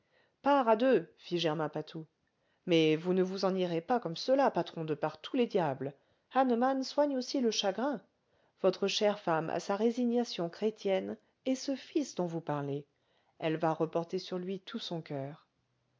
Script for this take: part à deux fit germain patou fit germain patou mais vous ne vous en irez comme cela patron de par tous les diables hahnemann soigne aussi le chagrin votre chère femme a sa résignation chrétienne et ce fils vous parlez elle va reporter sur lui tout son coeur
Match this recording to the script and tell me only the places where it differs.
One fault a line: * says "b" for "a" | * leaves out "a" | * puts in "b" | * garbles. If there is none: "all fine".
* leaves out "fit germain patou"
* puts in "pas"
* puts in "dont"